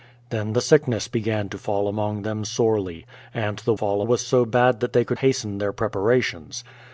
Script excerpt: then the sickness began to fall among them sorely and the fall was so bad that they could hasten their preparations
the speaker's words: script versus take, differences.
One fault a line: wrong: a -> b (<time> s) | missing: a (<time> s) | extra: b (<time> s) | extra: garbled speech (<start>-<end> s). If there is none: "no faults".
no faults